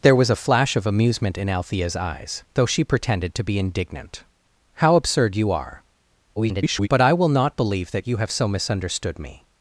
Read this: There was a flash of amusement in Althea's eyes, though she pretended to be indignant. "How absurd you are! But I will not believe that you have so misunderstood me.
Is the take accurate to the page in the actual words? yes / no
no